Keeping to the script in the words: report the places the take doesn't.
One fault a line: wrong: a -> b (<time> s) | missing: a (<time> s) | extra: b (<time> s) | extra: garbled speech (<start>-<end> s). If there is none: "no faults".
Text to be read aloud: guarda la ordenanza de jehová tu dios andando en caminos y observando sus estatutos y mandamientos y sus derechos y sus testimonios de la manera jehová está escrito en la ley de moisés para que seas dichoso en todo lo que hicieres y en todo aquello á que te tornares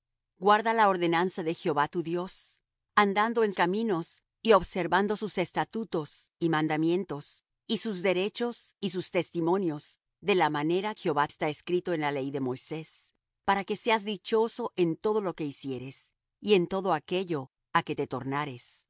no faults